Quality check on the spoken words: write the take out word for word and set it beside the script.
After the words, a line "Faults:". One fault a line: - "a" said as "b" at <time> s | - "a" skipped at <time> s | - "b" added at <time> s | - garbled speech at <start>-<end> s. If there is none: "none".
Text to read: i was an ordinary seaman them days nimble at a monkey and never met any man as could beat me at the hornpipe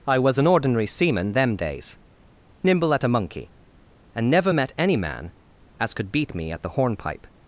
i was an ordinary seaman them days nimble at a monkey and never met any man as could beat me at the hornpipe
Faults:
none